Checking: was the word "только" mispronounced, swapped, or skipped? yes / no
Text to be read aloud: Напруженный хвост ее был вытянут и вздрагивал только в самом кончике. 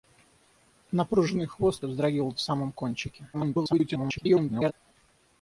yes